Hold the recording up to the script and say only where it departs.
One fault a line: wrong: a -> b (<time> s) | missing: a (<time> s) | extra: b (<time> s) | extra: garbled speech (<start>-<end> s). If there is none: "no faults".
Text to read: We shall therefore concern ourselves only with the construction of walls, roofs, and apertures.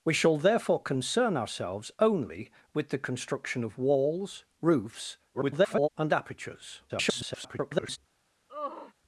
extra: garbled speech (5.3-5.9 s)
extra: garbled speech (6.9-8.0 s)